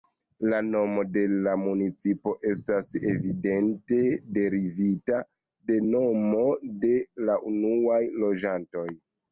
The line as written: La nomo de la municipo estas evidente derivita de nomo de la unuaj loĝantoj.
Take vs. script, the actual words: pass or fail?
pass